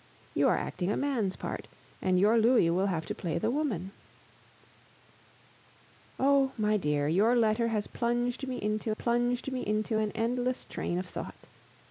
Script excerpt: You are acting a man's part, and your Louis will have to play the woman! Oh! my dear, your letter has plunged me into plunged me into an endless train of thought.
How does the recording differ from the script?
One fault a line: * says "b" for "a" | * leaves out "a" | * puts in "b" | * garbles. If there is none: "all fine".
all fine